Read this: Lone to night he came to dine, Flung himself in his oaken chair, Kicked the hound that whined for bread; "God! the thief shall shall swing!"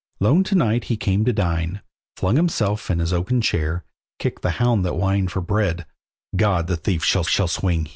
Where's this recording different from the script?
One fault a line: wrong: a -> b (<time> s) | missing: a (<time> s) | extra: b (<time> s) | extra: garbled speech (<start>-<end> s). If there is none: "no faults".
no faults